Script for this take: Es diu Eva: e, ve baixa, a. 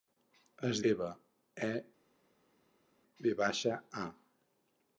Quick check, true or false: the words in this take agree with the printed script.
false